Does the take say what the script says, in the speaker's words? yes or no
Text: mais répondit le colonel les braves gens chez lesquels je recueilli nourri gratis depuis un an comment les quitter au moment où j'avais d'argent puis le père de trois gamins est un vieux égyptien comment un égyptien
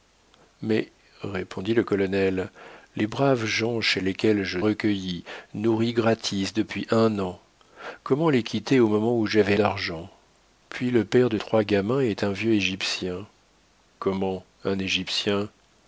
yes